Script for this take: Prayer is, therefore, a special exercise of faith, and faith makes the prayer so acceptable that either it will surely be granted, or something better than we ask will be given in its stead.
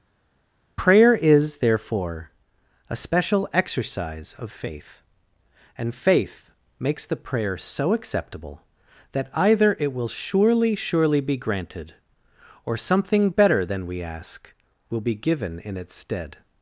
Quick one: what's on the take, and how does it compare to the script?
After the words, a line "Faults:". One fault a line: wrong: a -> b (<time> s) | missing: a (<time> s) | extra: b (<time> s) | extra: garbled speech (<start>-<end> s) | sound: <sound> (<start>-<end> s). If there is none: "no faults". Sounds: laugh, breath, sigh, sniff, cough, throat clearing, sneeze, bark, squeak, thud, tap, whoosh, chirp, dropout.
Prayer is, therefore, a special exercise of faith, and faith makes the prayer so acceptable that either it will surely surely be granted, or something better than we ask will be given in its stead.
Faults:
extra: surely (10.7 s)